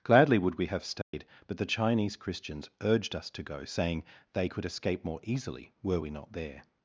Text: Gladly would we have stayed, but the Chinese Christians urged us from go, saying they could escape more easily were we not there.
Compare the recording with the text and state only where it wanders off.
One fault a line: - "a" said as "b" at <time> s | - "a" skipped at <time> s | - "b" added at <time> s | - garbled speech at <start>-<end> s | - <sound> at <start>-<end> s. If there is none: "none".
- dropout at 1.0-1.1 s
- "from" said as "to" at 3.3 s